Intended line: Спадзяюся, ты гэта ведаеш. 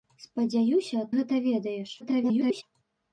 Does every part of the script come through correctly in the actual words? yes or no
no